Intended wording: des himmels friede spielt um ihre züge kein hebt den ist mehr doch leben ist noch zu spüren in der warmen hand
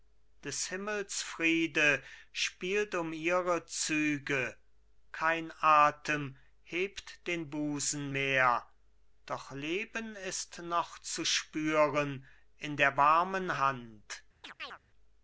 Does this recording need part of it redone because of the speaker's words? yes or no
yes